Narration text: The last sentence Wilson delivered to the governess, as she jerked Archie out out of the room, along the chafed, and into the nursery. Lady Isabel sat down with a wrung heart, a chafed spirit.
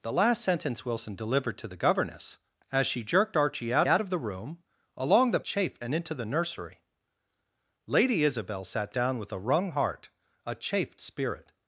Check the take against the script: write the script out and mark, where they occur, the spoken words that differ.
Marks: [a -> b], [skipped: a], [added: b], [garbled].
The last sentence Wilson delivered to the governess, as she jerked Archie out out of the room, along the chafed, and into the nursery. Lady Isabel sat down with a wrung heart, a chafed spirit.